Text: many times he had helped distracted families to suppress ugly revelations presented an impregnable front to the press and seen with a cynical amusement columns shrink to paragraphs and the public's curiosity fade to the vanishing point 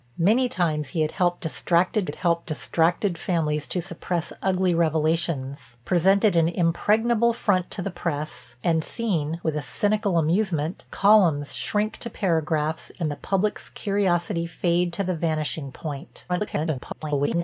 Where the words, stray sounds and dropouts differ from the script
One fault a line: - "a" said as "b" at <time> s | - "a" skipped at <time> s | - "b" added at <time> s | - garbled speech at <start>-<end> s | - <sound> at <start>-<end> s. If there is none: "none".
- "had helped distracted" added at 2.0 s
- garbled speech at 16.3-17.4 s